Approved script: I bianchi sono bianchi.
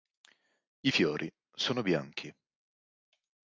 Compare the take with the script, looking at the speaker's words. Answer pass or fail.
fail